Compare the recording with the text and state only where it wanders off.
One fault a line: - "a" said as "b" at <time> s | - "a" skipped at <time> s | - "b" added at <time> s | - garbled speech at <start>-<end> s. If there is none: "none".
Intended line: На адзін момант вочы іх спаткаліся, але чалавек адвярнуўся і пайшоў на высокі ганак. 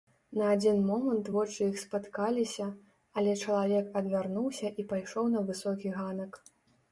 none